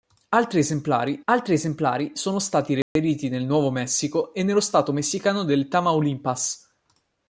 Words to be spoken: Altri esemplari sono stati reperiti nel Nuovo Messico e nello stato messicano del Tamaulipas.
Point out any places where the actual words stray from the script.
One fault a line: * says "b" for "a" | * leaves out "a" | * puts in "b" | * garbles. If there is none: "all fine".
* puts in "altri esemplari"